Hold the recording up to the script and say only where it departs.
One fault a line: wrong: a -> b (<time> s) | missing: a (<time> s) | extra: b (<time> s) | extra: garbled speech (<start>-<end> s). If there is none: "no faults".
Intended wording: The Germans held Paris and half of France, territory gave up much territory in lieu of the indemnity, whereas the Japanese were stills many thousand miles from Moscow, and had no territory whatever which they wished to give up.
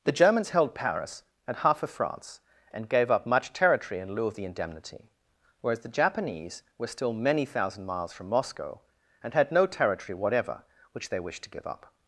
wrong: territory -> and (2.7 s)
wrong: stills -> still (6.9 s)